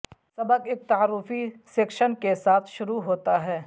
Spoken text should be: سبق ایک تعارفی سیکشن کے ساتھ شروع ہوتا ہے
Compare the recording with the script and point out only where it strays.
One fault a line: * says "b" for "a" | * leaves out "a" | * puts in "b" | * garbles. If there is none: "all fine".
all fine